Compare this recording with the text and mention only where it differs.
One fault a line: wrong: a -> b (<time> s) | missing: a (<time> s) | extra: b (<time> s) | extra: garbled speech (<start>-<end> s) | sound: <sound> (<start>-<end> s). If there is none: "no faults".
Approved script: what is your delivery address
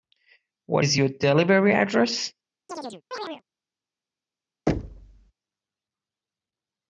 sound: chirp (2.7-3.4 s)
sound: thud (4.7-5.3 s)